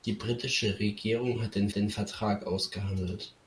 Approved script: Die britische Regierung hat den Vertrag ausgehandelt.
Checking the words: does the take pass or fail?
fail